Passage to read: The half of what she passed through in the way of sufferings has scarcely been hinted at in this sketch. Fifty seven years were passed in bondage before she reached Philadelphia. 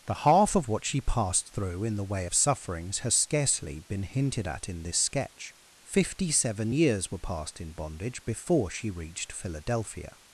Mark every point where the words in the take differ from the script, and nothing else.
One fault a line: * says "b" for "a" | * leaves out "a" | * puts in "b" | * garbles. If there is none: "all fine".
all fine